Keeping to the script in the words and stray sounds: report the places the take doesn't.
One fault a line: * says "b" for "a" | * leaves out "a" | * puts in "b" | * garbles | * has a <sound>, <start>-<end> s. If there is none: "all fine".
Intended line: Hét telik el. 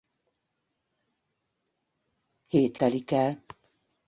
all fine